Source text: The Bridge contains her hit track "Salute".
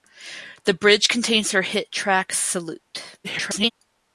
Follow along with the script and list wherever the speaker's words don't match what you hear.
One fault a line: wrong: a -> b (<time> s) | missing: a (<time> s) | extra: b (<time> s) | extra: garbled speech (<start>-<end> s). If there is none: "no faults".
extra: garbled speech (3.2-3.7 s)